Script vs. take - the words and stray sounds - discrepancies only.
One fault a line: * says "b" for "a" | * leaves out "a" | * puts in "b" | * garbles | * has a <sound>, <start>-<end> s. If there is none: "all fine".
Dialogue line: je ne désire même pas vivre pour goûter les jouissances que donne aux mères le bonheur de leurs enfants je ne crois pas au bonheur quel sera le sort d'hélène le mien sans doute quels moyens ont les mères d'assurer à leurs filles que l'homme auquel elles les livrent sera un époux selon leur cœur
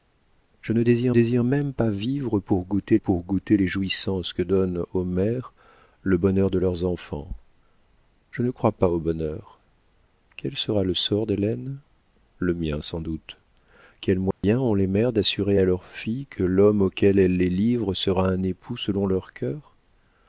* puts in "désire"
* puts in "pour goûter"
* has a dropout, 14.3-14.4 s